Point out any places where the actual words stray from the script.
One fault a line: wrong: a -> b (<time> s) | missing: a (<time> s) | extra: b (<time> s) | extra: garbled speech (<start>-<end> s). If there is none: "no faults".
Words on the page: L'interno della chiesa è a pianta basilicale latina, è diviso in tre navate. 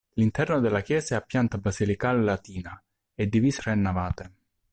missing: in (3.6 s)